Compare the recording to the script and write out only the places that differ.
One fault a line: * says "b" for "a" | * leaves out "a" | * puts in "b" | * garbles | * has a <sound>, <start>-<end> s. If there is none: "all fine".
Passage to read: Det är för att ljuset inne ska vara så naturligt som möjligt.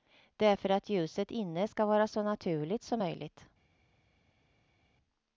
all fine